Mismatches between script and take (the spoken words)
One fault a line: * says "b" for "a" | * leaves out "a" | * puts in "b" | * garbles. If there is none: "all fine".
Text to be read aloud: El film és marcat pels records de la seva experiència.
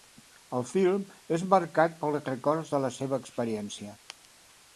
all fine